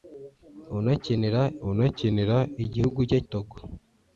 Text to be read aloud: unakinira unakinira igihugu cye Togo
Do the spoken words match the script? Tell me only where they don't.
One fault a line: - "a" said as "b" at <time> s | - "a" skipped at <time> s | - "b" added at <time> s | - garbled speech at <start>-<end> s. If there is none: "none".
none